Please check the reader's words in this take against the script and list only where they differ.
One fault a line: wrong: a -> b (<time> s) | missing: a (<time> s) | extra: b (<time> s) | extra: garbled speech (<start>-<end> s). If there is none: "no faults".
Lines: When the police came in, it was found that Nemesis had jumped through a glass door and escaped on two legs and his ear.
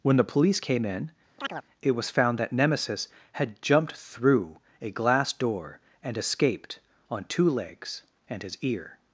no faults